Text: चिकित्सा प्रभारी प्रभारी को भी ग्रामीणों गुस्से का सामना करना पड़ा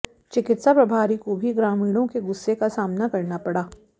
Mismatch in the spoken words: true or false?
true